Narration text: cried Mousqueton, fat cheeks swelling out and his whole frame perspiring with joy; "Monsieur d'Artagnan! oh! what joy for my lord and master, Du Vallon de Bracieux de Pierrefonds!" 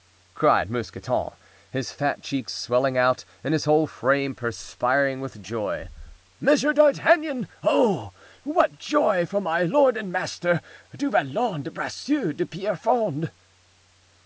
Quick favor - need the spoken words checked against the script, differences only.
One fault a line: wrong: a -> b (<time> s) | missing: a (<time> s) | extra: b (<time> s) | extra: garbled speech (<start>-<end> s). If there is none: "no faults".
extra: his (1.7 s)